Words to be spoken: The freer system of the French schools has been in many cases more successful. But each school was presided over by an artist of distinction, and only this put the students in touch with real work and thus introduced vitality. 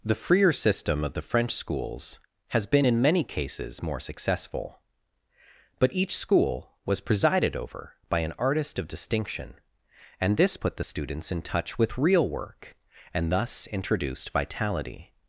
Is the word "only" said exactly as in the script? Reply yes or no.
no